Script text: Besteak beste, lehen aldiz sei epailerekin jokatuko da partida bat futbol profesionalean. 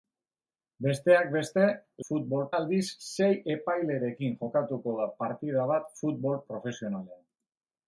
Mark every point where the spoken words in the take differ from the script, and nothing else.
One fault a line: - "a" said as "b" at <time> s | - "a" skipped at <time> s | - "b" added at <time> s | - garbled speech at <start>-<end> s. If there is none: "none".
- "lehen" said as "futbol" at 2.1 s